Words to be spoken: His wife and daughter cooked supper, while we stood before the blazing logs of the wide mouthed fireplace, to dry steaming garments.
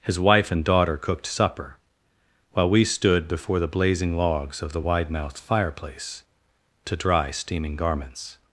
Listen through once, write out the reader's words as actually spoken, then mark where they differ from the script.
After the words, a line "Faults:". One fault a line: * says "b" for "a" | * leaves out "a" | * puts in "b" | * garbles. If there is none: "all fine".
His wife and daughter cooked supper, while we stood before the blazing logs of the wide mouthed fireplace, to dry steaming garments.
Faults:
all fine